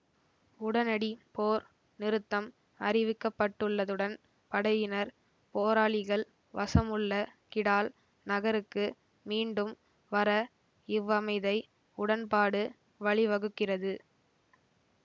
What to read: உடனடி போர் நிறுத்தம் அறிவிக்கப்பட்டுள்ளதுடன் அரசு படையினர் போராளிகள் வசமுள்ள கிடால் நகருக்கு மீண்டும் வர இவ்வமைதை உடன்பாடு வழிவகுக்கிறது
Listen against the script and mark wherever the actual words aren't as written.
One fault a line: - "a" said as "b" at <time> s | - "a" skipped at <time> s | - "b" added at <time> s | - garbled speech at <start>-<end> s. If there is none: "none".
- "அரசு" skipped at 4.2 s